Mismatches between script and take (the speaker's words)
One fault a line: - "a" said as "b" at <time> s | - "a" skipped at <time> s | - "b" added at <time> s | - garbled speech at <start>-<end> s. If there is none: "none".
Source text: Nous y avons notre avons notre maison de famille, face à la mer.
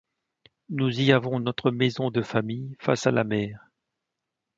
- "avons notre" skipped at 1.7 s